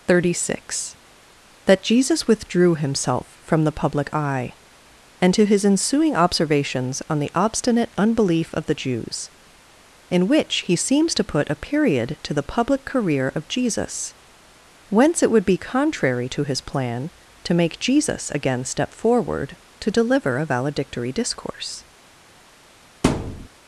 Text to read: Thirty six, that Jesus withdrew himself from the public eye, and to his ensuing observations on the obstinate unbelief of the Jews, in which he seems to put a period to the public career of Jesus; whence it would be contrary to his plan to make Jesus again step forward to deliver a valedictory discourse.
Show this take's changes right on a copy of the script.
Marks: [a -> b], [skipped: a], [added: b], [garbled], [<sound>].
Thirty six, that Jesus withdrew himself from the public eye, and to his ensuing observations on the obstinate unbelief of the Jews, in which he seems to put a period to the public career of Jesus; whence it would be contrary to his plan to make Jesus again step forward to deliver a valedictory discourse. [thud]